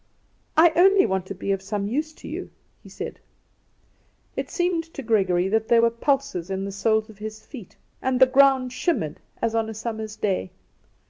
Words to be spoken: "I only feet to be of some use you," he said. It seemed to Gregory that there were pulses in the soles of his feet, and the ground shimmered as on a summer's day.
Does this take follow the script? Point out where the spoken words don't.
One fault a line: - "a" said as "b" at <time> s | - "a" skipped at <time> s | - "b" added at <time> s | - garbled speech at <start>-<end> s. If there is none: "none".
- "feet" said as "want" at 1.1 s
- "to" added at 2.1 s